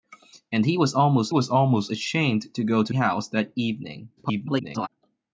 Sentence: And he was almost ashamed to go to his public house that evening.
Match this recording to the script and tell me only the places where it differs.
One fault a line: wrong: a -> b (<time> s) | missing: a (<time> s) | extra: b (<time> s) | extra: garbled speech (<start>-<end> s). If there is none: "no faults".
extra: was almost (1.3 s)
missing: his public (2.9 s)
extra: garbled speech (4.2-4.9 s)